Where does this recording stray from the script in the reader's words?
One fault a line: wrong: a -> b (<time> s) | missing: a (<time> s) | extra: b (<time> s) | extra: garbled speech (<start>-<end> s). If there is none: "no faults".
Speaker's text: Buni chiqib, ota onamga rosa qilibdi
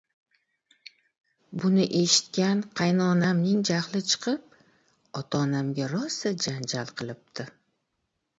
extra: eshitgan qaynonamning jahli (2.0 s)
extra: janjal (6.5 s)